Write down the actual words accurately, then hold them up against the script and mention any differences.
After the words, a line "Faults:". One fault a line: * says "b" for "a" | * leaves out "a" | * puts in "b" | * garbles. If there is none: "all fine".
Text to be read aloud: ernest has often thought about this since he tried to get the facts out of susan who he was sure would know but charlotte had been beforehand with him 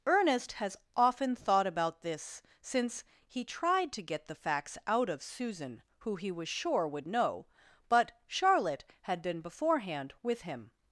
ernest has often thought about this since he tried to get the facts out of susan who he was sure would know but charlotte had been beforehand with him
Faults:
all fine